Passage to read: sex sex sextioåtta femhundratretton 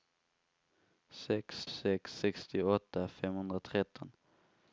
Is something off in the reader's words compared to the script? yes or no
no